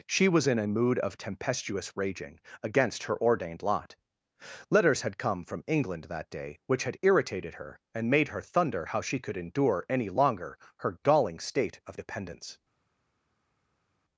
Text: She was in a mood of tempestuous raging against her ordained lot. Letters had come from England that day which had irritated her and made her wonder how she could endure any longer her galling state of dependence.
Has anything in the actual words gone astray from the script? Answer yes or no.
yes